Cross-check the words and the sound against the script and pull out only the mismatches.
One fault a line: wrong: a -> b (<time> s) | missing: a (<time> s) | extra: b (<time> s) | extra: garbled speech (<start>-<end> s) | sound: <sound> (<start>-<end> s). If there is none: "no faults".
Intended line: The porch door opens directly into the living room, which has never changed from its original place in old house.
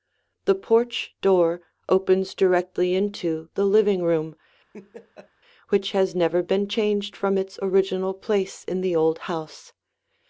sound: laugh (4.7-5.3 s)
extra: been (6.4 s)
extra: the (8.8 s)